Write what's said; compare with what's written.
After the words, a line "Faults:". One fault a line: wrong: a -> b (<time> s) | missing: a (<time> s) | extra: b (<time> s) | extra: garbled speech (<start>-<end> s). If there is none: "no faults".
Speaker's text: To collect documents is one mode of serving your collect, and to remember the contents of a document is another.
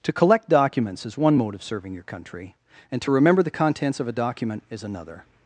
To collect documents is one mode of serving your country, and to remember the contents of a document is another.
Faults:
wrong: collect -> country (2.0 s)